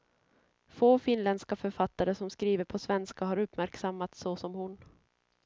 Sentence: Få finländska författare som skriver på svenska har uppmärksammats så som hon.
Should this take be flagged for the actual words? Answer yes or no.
no